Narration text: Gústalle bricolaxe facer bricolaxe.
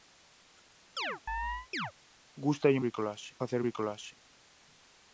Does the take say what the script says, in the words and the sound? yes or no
no